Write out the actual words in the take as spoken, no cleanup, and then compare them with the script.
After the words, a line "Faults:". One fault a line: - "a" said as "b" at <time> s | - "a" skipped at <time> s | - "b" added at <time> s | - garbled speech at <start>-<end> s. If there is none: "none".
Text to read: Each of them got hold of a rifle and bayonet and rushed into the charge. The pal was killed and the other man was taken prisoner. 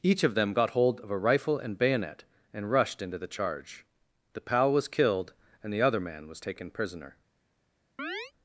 Each of them got hold of a rifle and bayonet and rushed into the charge. The pal was killed and the other man was taken prisoner.
Faults:
none